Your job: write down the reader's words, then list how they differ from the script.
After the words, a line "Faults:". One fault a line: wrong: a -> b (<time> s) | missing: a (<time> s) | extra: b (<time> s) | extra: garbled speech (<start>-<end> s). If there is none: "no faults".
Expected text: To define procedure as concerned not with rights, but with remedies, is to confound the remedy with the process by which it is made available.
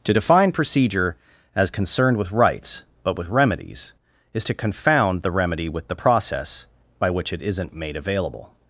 To define procedure as concerned with rights, but with remedies, is to confound the remedy with the process by which it isn't made available.
Faults:
missing: not (2.2 s)
wrong: is -> isn't (7.4 s)